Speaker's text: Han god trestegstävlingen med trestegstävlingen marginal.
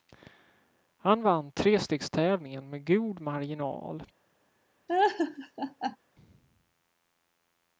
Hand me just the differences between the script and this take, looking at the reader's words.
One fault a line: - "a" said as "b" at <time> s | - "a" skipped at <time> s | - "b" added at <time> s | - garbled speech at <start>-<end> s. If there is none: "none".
- "god" said as "vann" at 1.2 s
- "trestegstävlingen" said as "god" at 2.9 s